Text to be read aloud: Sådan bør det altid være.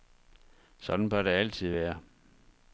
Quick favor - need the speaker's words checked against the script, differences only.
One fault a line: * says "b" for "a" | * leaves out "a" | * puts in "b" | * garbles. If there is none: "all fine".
all fine